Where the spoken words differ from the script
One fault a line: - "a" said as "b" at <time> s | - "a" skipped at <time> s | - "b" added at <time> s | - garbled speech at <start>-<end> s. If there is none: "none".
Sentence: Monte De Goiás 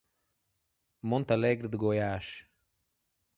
- "Alegre" added at 1.3 s